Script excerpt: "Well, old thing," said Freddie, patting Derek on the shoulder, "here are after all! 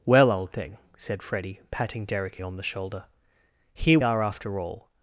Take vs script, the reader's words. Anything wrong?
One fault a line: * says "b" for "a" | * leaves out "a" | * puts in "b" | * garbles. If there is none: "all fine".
all fine